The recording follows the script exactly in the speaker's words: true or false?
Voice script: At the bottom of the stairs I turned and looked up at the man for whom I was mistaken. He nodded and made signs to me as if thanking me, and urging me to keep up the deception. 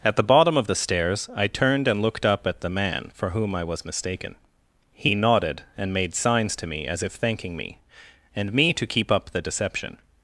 false